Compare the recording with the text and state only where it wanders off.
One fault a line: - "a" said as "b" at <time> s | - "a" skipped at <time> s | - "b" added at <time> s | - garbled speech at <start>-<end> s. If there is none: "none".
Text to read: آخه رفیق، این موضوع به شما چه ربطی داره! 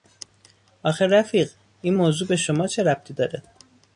none